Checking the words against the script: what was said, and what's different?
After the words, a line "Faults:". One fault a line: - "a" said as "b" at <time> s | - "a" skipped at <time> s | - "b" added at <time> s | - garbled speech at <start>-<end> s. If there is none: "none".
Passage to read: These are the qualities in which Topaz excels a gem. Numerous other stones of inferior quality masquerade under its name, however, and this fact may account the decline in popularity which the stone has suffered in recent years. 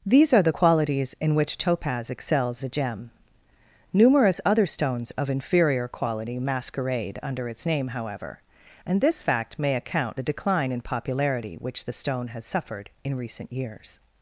These are the qualities in which Topaz excels a gem. Numerous other stones of inferior quality masquerade under its name, however, and this fact may account the decline in popularity which the stone has suffered in recent years.
Faults:
none